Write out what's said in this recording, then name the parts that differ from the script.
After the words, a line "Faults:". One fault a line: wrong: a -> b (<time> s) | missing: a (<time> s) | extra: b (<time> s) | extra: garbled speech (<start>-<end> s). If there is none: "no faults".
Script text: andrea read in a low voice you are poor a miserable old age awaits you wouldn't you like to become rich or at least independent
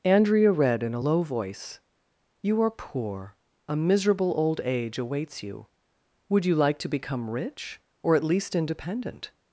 andrea read in a low voice you are poor a miserable old age awaits you would you like to become rich or at least independent
Faults:
wrong: wouldn't -> would (6.3 s)